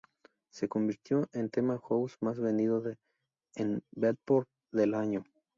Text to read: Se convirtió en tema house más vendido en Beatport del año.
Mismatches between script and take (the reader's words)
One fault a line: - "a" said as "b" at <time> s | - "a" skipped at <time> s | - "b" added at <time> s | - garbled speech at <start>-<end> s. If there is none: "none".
none